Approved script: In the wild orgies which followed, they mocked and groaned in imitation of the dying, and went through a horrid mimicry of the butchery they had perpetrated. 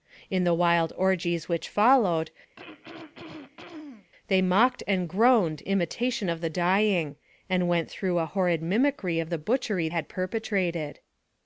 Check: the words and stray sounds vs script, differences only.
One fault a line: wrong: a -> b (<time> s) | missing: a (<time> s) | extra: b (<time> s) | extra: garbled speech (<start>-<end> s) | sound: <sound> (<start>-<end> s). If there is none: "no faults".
sound: throat clearing (2.6-4.1 s)
missing: in (5.6 s)
missing: they (9.9 s)